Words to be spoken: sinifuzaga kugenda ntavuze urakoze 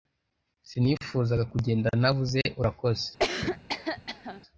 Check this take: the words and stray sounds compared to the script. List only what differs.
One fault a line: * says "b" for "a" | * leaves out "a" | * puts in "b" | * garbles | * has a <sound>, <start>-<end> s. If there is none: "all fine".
* has a cough, 3.2-4.4 s